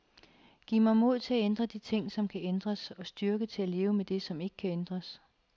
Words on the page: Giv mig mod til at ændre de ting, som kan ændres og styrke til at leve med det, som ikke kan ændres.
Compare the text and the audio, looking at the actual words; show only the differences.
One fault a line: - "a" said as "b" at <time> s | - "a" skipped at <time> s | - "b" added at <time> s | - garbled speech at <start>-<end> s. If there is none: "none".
none